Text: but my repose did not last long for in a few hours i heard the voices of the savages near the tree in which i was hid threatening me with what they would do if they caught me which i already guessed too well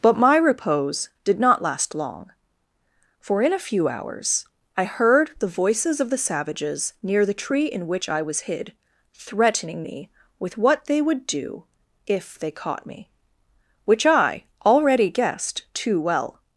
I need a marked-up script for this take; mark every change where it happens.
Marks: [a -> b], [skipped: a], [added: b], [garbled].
but my repose did not last long for in a few hours i heard the voices of the savages near the tree in which i was hid threatening me with what they would do if they caught me which i already guessed too well